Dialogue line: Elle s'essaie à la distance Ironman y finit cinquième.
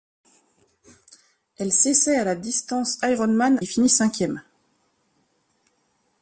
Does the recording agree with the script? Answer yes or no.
yes